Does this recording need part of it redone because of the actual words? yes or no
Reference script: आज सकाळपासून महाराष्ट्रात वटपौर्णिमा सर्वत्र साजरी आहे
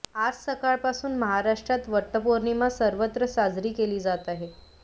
yes